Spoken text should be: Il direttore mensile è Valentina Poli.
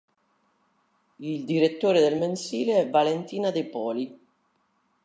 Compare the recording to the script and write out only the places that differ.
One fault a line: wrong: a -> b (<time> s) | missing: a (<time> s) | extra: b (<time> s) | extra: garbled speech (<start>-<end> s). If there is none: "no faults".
extra: del (2.0 s)
extra: De (3.5 s)